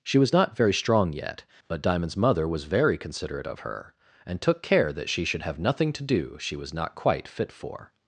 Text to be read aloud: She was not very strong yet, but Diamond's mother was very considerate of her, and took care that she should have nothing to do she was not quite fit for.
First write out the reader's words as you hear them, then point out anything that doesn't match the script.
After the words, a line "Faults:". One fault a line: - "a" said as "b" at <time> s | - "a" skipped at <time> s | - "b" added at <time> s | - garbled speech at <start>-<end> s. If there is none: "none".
She was not very strong yet, but Diamond's mother was very considerate of her, and took care that she should have nothing to do she was not quite fit for.
Faults:
none